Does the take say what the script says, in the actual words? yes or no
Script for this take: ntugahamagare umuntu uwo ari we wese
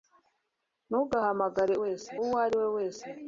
no